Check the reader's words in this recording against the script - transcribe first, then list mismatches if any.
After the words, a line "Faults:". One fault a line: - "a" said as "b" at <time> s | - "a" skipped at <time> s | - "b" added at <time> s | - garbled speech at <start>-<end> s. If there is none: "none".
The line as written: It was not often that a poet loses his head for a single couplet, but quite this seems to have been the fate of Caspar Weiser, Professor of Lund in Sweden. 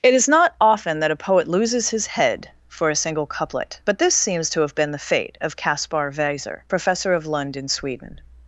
It is not often that a poet loses his head for a single couplet, but this seems to have been the fate of Caspar Weiser, Professor of Lund in Sweden.
Faults:
- "was" said as "is" at 0.1 s
- "quite" skipped at 4.0 s